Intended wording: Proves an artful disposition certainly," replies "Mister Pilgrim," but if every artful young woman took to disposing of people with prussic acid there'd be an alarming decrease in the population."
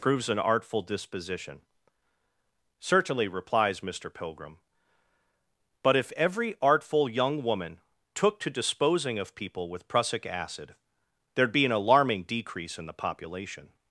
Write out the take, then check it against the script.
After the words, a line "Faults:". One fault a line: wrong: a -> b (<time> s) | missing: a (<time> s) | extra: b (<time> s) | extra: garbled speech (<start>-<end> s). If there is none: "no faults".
Proves an artful disposition certainly," replies "Mister Pilgrim," but if every artful young woman took to disposing of people with prussic acid there'd be an alarming decrease in the population."
Faults:
no faults